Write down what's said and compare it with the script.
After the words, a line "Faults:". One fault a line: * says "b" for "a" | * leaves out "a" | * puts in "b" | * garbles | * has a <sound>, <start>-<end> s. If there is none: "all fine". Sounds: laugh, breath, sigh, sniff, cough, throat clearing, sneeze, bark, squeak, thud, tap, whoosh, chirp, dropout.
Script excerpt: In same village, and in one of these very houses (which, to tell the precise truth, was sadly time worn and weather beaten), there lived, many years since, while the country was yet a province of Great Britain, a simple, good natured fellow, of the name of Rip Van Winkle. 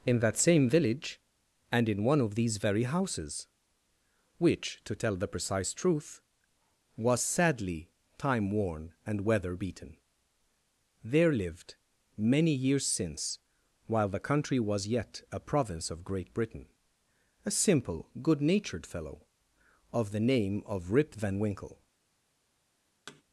In that same village, and in one of these very houses (which, to tell the precise truth, was sadly time worn and weather beaten), there lived, many years since, while the country was yet a province of Great Britain, a simple, good natured fellow, of the name of Rip Van Winkle.
Faults:
* puts in "that"
* has a thud, 23.1-23.2 s